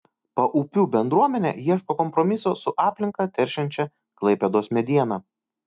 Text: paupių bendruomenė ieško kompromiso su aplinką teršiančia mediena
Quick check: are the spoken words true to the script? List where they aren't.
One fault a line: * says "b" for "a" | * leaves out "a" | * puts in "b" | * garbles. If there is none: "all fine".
* puts in "klaipėdos"